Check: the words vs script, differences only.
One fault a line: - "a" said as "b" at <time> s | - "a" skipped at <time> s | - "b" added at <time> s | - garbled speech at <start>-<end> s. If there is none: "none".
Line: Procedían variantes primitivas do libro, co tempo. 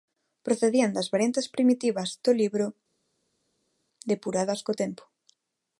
- "das" added at 0.9 s
- "depuradas" added at 4.1 s